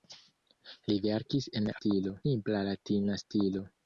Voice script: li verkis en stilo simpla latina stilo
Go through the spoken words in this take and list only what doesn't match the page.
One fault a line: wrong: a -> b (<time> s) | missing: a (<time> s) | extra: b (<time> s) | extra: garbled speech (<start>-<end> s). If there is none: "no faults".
no faults